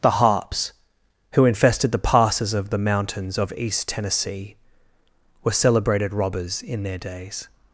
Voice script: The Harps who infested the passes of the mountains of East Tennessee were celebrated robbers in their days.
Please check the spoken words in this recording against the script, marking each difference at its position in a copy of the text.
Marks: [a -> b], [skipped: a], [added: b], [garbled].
The Harps who infested the passes of the mountains of East Tennessee were celebrated robbers in their days.